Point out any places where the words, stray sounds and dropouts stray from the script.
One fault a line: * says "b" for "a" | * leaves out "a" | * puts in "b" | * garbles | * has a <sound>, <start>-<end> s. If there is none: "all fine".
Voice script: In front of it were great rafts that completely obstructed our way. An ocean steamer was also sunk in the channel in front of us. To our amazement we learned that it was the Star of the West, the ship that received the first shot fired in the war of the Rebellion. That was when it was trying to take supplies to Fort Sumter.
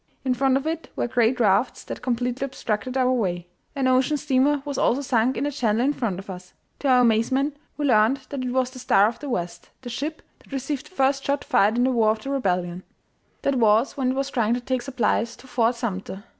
all fine